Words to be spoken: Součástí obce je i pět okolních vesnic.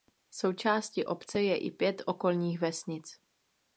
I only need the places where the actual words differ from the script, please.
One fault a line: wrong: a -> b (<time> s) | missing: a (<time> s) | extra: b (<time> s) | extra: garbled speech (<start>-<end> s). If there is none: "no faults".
no faults